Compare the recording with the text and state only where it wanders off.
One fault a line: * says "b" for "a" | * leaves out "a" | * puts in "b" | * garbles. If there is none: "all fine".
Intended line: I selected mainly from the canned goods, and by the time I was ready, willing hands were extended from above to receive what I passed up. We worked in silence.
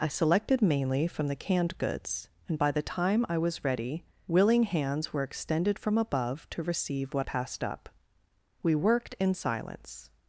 * leaves out "I"